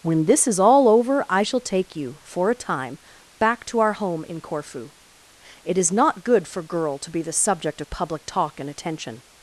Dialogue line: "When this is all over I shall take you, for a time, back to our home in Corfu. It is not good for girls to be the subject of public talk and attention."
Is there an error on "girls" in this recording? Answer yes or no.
yes